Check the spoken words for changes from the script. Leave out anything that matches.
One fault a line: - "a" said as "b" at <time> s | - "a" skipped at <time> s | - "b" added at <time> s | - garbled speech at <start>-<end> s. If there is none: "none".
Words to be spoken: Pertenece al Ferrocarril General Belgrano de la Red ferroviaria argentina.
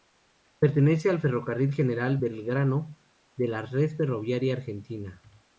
none